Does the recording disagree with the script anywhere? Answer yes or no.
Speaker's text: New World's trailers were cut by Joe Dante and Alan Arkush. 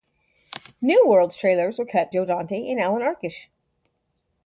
yes